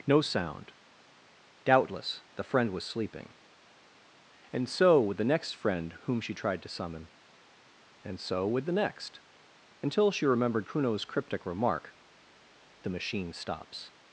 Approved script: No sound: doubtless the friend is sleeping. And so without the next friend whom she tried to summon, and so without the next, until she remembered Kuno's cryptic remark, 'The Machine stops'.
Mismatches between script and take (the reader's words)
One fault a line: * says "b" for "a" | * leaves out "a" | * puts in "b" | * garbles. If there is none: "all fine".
* says "was" for "is"
* says "with" for "without"
* says "with" for "without"